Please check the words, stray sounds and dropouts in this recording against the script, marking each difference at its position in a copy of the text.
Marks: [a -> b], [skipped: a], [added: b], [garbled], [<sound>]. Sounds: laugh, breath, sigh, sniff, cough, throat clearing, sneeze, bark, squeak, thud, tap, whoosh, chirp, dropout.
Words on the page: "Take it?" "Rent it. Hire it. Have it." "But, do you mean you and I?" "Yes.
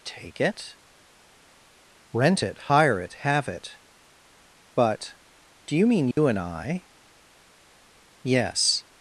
"Take it?" "Rent it. Hire it. Have it." "But, do you mean you [dropout] and I?" "Yes.